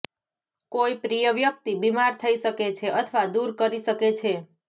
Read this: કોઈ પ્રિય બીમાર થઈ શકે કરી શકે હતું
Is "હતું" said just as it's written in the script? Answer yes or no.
no